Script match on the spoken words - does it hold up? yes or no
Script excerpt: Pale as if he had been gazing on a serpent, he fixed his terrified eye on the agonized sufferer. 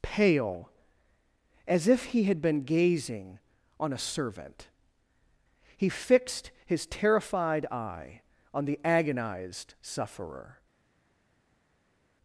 no